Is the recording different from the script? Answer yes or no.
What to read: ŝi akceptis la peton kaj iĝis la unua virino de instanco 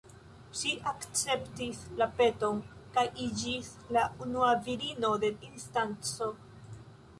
no